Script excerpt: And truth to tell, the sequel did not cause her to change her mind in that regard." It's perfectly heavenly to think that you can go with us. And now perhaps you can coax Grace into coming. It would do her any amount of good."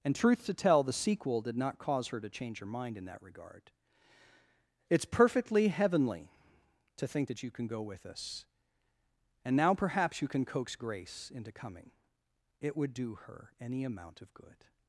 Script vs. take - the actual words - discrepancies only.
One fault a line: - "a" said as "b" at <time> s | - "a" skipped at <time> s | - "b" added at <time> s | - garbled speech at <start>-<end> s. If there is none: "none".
none